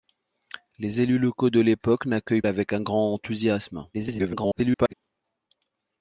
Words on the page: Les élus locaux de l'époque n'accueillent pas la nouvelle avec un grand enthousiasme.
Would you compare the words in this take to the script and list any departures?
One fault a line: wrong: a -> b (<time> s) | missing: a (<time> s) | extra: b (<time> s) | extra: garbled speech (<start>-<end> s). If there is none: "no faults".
missing: pas la nouvelle (2.4 s)
extra: garbled speech (3.9-4.9 s)